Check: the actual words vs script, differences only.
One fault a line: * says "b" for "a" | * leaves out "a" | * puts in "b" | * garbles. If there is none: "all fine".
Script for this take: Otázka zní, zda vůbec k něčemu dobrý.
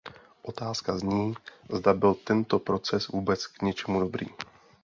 * puts in "byl tento proces"